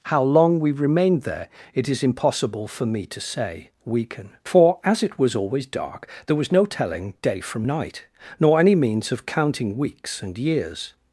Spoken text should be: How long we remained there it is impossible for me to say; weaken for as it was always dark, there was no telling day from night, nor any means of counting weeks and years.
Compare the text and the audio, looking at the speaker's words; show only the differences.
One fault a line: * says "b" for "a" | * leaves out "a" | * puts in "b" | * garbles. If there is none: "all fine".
all fine